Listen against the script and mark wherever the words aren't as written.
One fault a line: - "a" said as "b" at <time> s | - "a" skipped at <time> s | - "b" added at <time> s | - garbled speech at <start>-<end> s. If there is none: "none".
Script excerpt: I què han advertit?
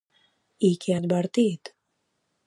- "han" skipped at 0.9 s